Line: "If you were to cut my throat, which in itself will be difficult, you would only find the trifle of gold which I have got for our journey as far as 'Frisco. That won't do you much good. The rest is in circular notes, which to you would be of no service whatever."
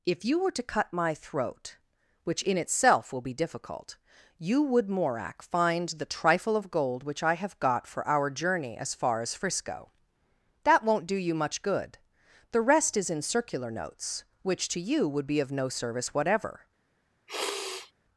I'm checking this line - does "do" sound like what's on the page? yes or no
yes